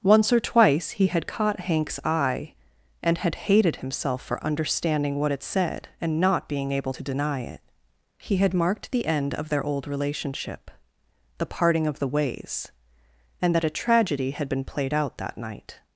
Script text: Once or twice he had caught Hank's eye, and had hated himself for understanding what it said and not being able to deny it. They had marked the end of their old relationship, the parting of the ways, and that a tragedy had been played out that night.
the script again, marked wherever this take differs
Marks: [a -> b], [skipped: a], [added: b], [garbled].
Once or twice he had caught Hank's eye, and had hated himself for understanding what it said and not being able to deny it. [They -> He] had marked the end of their old relationship, the parting of the ways, and that a tragedy had been played out that night.